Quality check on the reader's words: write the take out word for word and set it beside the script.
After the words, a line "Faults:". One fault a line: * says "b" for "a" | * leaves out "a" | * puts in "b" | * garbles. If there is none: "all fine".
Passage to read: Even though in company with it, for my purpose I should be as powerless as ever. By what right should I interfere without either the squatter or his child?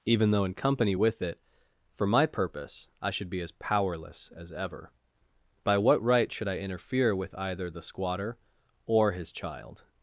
Even though in company with it, for my purpose I should be as powerless as ever. By what right should I interfere with either the squatter or his child?
Faults:
* says "with" for "without"